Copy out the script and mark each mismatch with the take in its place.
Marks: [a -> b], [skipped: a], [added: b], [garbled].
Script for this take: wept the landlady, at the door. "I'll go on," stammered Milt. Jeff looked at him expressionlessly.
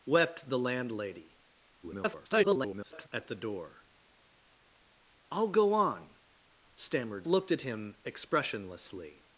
wept the landlady, [garbled] at the door. "I'll go on," stammered [skipped: Milt. Jeff] looked at him expressionlessly.